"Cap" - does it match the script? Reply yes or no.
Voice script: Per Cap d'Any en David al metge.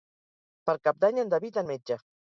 yes